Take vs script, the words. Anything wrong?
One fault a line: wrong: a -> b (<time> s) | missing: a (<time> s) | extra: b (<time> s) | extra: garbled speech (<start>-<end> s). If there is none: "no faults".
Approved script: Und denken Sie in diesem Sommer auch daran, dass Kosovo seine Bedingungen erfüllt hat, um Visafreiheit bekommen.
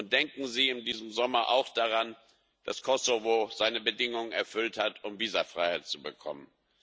extra: zu (5.9 s)